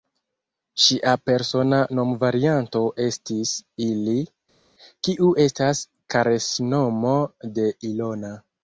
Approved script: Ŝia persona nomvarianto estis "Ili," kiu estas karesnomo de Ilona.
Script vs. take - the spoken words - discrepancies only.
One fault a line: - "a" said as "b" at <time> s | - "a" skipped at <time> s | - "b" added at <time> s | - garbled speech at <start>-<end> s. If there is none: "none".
none